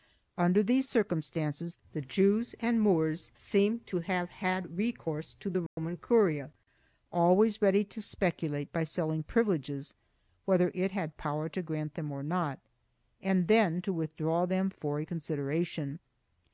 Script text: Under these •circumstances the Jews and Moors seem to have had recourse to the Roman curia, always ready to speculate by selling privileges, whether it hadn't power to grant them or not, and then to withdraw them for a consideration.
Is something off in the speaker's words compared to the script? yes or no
yes